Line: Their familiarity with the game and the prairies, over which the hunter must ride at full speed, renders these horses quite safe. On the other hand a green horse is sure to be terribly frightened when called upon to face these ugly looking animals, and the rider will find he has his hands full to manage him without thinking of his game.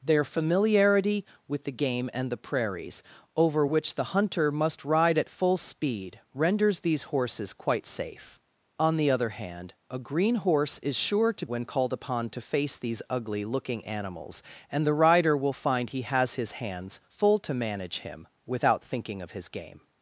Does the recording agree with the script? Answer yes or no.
no